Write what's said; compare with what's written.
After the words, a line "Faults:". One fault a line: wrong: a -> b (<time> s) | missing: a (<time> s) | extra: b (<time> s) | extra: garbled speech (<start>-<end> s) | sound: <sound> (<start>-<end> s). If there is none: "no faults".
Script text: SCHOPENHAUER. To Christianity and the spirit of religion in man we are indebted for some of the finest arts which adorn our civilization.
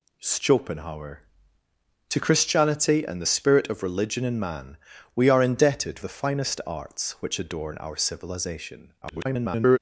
SCHOPENHAUER. To Christianity and the spirit of religion in man we are indebted the finest arts which adorn our civilization. [garbled]
Faults:
missing: for some of (6.0 s)
extra: garbled speech (9.0-9.8 s)